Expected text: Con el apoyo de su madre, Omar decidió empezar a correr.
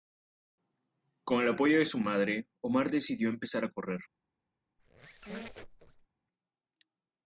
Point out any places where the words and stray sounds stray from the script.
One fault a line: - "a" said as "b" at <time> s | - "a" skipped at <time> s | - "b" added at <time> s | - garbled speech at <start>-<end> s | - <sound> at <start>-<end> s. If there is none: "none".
- squeak at 4.8-6.1 s